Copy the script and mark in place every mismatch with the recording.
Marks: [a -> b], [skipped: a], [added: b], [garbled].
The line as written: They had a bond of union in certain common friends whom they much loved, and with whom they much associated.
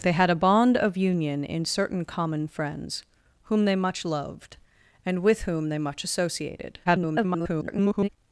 They had a bond of union in certain common friends whom they much loved, and with whom they much associated. [garbled]